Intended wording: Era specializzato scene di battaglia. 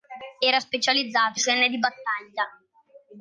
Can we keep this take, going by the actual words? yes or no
yes